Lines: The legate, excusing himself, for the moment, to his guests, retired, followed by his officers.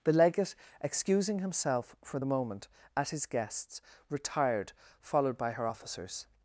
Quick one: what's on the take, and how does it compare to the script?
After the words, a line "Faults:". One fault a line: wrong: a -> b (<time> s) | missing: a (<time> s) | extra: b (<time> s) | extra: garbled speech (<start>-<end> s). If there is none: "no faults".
The legate, excusing himself, for the moment, at his guests, retired, followed by her officers.
Faults:
wrong: to -> at (2.9 s)
wrong: his -> her (5.5 s)